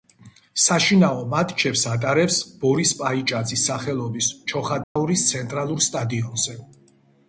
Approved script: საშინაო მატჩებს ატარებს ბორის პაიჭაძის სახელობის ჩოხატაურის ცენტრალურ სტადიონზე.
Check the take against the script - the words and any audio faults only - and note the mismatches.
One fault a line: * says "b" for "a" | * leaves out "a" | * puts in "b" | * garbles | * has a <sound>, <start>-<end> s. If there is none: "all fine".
* has a dropout, 4.8-5.0 s